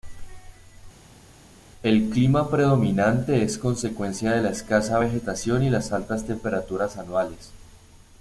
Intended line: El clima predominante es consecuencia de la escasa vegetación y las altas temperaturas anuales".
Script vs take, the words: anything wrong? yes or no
no